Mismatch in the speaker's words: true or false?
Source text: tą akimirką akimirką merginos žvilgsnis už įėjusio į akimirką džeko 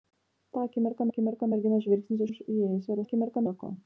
false